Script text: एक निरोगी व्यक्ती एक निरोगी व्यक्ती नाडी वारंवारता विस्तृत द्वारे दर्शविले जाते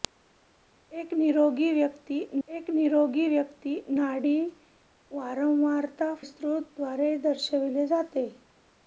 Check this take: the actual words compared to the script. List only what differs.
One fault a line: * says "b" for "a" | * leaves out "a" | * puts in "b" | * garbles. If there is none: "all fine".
all fine